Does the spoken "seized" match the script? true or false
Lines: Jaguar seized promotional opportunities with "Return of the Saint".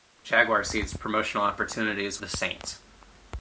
true